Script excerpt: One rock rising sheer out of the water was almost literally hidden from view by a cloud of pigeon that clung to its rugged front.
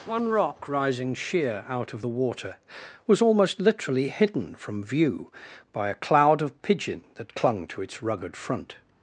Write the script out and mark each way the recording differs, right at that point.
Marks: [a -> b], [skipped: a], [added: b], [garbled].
One rock rising sheer out of the water was almost literally hidden from view by a cloud of pigeon that clung to its rugged front.